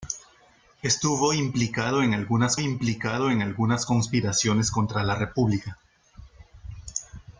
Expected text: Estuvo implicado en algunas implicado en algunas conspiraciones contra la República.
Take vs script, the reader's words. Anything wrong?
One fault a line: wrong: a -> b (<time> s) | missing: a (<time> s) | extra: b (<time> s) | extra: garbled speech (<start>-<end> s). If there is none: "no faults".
no faults